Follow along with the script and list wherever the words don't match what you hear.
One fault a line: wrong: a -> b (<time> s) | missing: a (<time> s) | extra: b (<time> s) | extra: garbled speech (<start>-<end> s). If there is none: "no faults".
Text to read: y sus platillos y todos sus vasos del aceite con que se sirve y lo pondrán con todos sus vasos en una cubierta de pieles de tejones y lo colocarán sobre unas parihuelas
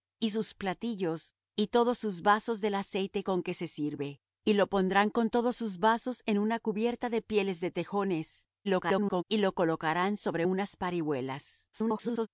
extra: garbled speech (8.6-9.2 s)
extra: garbled speech (11.7-12.3 s)